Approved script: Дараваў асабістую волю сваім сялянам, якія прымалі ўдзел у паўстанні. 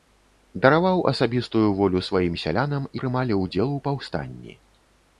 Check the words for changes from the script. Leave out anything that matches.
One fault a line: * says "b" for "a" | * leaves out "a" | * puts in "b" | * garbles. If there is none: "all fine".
* leaves out "якія"